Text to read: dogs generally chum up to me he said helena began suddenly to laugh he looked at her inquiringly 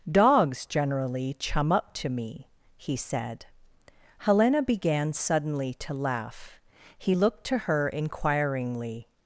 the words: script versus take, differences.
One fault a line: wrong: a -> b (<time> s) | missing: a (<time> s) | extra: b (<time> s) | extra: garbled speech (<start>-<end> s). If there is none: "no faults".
wrong: at -> to (7.4 s)